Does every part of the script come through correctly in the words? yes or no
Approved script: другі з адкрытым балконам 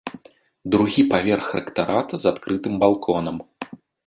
no